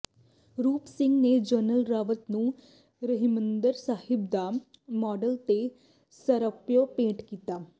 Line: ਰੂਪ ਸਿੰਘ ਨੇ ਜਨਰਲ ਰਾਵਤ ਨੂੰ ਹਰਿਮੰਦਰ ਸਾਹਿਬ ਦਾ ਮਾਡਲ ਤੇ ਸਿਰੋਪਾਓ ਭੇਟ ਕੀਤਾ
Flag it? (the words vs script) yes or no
no